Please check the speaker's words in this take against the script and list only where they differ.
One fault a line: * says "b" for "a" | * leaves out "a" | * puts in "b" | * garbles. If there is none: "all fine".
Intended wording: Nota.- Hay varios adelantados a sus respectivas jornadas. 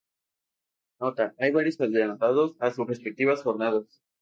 all fine